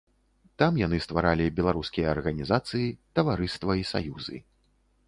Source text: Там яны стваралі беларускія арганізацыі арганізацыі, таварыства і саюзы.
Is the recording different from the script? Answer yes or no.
yes